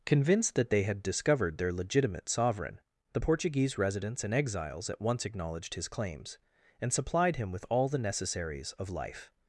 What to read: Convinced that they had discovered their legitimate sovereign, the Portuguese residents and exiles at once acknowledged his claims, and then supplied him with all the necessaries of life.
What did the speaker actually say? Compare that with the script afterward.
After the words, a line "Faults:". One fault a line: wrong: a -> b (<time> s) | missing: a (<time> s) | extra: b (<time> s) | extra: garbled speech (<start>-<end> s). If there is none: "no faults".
Convinced that they had discovered their legitimate sovereign, the Portuguese residents and exiles at once acknowledged his claims, and supplied him with all the necessaries of life.
Faults:
missing: then (6.9 s)